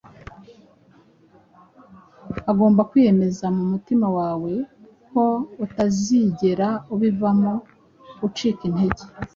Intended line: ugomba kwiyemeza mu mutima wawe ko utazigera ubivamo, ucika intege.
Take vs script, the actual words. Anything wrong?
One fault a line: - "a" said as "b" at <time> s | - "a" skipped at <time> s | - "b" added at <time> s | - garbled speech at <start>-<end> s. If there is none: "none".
none